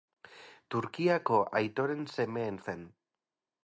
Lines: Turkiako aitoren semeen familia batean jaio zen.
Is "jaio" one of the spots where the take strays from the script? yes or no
yes